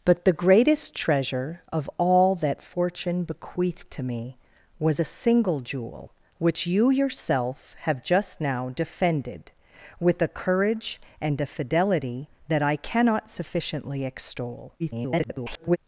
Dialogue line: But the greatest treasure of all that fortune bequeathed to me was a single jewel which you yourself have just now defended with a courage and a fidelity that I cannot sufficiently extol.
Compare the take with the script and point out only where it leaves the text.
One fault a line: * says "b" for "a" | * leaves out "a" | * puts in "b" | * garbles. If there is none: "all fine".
* garbles